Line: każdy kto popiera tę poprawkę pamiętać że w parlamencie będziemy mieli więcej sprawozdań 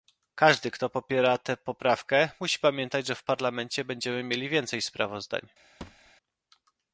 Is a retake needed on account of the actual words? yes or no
yes